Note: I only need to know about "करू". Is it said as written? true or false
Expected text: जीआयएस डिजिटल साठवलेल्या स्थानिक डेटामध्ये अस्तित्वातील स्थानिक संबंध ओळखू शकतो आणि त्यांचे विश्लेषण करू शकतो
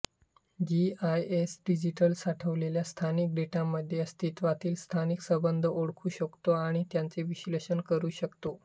true